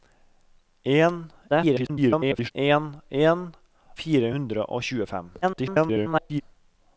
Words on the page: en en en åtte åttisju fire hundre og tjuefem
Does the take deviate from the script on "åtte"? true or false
true